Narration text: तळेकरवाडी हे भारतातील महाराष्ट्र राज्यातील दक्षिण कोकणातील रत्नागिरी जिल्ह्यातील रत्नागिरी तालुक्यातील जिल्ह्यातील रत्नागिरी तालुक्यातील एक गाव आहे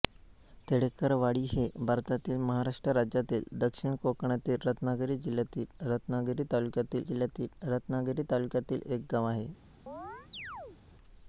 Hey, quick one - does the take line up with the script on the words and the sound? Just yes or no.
no